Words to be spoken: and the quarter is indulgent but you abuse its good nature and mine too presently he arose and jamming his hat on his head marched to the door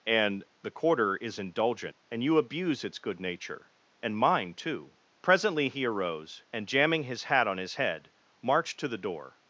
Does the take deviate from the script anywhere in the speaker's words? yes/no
yes